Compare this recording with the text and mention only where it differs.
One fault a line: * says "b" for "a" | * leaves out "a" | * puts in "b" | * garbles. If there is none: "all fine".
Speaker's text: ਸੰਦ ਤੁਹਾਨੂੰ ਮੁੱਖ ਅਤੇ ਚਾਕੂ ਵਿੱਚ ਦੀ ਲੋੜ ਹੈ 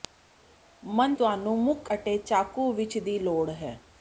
all fine